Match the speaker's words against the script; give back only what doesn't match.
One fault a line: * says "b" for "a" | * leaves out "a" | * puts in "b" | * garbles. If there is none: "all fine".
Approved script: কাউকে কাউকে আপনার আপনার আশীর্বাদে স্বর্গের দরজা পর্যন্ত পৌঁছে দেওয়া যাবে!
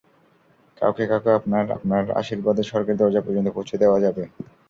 all fine